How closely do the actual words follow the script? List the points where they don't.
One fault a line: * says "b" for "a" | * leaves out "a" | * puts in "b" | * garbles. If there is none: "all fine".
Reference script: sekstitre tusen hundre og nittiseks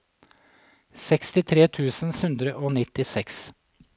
all fine